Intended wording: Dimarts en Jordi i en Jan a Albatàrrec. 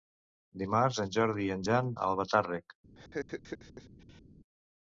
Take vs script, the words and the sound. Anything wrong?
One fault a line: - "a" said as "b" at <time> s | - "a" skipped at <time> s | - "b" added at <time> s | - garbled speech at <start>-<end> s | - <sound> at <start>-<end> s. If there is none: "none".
- laugh at 2.9-4.2 s